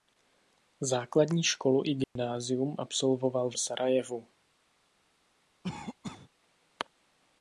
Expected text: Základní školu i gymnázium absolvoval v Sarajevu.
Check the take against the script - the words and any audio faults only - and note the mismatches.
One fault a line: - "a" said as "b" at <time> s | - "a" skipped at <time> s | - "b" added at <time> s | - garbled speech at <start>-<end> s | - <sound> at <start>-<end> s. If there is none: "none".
- dropout at 2.0-2.2 s
- cough at 5.6-6.3 s